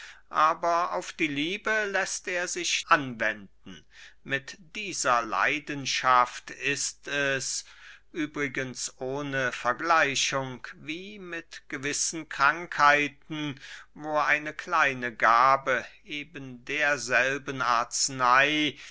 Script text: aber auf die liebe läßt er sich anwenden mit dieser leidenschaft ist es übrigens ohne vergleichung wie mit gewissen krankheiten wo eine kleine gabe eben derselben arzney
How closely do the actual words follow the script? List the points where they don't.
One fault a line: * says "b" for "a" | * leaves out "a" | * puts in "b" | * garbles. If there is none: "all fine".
all fine